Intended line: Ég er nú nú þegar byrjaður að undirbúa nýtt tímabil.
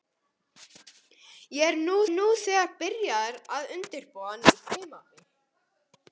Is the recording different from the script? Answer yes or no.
no